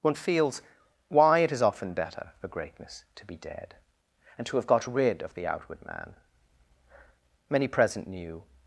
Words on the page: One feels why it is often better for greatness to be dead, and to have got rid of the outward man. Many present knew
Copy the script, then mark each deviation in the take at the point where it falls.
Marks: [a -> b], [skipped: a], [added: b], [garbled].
One feels why it is often better for greatness to be dead, and to have got rid of the outward man. Many present knew